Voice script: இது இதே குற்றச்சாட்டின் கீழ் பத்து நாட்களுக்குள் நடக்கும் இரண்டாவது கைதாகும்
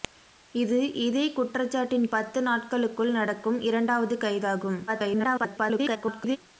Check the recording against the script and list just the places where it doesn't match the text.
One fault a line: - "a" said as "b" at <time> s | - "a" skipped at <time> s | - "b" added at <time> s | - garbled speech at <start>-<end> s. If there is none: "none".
- "கீழ்" skipped at 2.1 s
- garbled speech at 4.9-6.4 s